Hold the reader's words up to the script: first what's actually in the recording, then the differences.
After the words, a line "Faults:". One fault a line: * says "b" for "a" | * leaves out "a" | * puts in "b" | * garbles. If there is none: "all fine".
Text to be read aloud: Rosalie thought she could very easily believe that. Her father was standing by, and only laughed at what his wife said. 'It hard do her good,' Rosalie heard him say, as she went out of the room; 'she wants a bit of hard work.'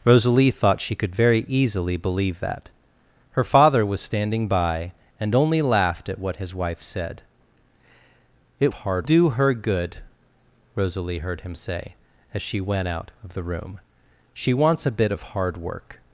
Rosalie thought she could very easily believe that. Her father was standing by, and only laughed at what his wife said. 'It hard do her good,' Rosalie heard him say, as she went out of the room; 'she wants a bit of hard work.'
Faults:
all fine